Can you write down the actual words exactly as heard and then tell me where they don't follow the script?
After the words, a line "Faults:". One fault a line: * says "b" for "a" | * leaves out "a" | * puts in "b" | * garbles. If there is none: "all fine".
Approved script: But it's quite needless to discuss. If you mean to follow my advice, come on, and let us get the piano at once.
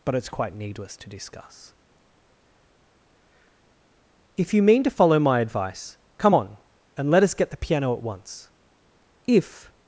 But it's quite needless to discuss. If you mean to follow my advice, come on, and let us get the piano at once. If
Faults:
* puts in "If"